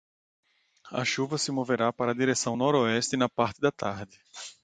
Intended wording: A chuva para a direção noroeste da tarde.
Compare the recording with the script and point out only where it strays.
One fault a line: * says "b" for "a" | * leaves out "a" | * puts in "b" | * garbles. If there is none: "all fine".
* puts in "se moverá"
* puts in "na parte"